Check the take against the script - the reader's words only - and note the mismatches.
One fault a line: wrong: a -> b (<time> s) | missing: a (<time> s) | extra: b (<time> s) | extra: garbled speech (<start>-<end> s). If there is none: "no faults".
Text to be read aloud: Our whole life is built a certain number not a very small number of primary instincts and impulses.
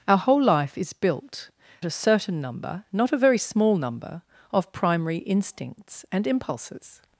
no faults